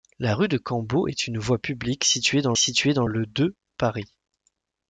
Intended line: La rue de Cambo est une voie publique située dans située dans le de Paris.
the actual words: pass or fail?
pass